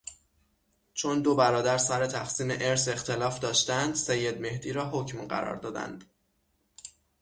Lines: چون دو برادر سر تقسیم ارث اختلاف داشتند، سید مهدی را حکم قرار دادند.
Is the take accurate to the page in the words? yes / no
yes